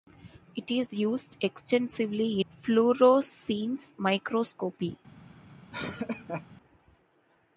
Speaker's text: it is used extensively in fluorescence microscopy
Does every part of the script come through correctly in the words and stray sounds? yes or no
no